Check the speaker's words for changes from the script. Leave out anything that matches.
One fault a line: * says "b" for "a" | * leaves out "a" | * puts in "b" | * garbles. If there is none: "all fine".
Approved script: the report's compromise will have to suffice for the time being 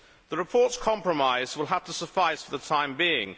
all fine